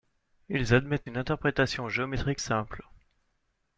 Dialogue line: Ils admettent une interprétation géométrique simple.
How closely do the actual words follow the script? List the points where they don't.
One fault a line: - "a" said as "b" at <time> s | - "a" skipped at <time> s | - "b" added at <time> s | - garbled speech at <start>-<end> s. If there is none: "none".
none